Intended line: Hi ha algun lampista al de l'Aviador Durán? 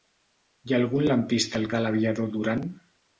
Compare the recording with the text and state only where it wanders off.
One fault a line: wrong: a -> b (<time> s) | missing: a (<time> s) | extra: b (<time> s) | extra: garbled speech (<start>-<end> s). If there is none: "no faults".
no faults